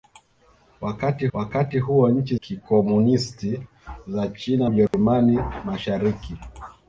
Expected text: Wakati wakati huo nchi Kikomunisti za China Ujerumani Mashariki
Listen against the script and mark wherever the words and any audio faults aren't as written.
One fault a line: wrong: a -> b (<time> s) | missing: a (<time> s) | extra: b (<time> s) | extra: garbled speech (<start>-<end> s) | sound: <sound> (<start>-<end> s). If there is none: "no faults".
sound: dropout (4.9-4.9 s)